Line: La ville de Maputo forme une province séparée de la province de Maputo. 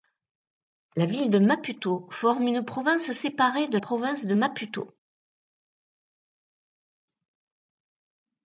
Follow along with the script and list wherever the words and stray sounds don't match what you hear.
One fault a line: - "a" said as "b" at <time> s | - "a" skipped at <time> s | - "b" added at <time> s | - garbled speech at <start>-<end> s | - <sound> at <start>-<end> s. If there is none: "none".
- "la" skipped at 3.8 s